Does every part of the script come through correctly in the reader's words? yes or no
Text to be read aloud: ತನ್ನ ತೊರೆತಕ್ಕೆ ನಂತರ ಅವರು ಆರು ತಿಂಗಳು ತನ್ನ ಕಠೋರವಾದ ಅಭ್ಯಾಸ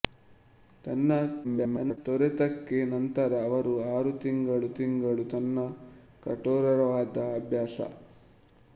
no